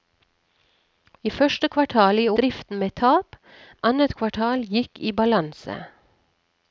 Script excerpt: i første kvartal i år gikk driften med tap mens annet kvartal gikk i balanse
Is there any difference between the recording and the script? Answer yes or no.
yes